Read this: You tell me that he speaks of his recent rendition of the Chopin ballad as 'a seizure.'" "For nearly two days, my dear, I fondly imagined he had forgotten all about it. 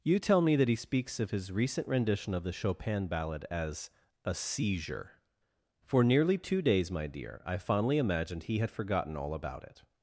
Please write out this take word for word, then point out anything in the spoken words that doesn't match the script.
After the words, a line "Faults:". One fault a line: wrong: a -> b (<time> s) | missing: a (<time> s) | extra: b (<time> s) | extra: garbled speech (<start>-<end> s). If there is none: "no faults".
You tell me that he speaks of his recent rendition of the Chopin ballad as 'a seizure.'" "For nearly two days, my dear, I fondly imagined he had forgotten all about it.
Faults:
no faults